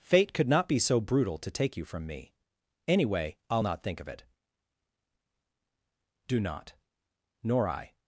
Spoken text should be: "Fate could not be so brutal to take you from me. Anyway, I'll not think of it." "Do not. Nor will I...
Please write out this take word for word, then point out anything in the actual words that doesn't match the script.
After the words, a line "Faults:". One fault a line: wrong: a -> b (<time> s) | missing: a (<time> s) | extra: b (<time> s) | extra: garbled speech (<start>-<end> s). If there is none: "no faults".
"Fate could not be so brutal to take you from me. Anyway, I'll not think of it." "Do not. Nor I...
Faults:
missing: will (7.7 s)